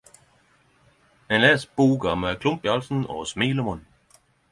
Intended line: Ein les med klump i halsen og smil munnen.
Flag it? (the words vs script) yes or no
yes